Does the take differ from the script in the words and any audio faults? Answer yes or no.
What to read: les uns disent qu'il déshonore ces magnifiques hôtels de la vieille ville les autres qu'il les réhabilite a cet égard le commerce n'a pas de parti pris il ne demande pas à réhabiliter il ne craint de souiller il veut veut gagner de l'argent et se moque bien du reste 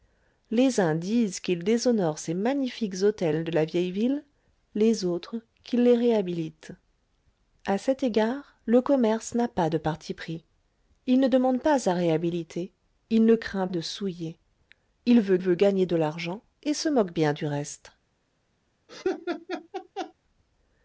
yes